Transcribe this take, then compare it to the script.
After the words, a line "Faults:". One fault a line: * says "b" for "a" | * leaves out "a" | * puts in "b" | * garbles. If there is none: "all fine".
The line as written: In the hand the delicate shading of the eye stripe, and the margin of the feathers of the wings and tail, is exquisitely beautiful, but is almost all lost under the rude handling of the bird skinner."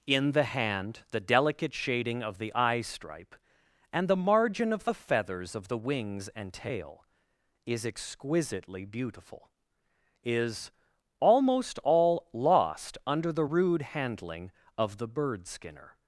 In the hand the delicate shading of the eye stripe, and the margin of the feathers of the wings and tail, is exquisitely beautiful, is almost all lost under the rude handling of the bird skinner."
Faults:
* leaves out "but"